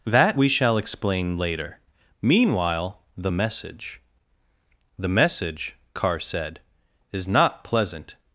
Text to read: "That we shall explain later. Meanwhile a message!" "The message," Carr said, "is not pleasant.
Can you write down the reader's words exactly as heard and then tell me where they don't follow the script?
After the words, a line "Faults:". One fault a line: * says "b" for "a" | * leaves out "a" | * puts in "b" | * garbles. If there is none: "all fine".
"That we shall explain later. Meanwhile the message!" "The message," Carr said, "is not pleasant.
Faults:
* says "the" for "a"